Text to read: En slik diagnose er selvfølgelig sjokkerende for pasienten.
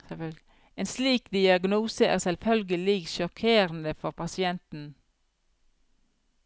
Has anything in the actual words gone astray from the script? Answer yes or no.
no